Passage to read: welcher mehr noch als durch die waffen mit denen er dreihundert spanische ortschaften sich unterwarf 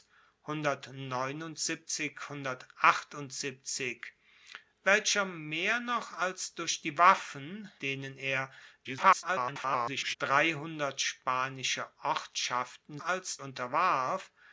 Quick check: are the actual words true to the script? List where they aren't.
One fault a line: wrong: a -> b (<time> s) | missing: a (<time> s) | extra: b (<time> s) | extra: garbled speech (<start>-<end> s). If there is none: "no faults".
missing: mit (7.7 s)
extra: garbled speech (8.8-10.2 s)
wrong: sich -> als (13.0 s)